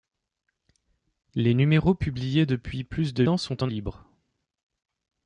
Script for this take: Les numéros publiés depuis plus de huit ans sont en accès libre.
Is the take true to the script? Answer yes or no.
no